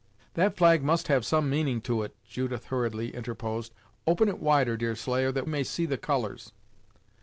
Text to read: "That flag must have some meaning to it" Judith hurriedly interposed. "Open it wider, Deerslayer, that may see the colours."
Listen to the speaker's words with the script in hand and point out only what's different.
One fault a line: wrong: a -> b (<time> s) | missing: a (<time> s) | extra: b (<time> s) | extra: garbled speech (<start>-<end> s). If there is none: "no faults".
no faults